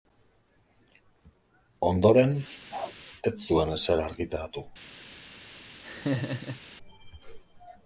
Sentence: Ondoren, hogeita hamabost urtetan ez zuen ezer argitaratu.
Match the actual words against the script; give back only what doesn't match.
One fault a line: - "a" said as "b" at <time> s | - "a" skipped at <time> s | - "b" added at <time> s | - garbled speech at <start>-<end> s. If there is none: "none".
- "hogeita hamabost urtetan" skipped at 2.3 s